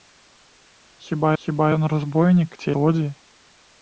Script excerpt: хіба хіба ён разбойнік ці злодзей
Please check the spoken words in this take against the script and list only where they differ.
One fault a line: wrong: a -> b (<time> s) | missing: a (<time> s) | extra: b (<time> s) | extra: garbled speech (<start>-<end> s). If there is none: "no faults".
no faults